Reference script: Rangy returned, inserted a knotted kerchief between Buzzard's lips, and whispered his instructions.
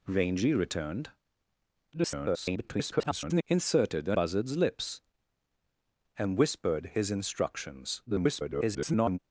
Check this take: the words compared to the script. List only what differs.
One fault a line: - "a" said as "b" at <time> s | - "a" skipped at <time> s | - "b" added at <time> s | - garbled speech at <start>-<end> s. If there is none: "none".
- garbled speech at 1.9-3.4 s
- "knotted kerchief between" skipped at 4.2 s
- garbled speech at 8.1-9.2 s